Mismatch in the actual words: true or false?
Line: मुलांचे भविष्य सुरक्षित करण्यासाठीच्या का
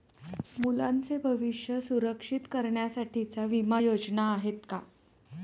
true